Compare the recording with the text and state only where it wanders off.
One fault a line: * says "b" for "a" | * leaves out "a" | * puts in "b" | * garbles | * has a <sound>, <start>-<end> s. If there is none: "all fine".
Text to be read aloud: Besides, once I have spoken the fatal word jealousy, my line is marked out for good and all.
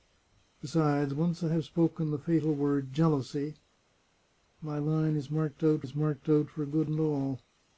* puts in "is marked out"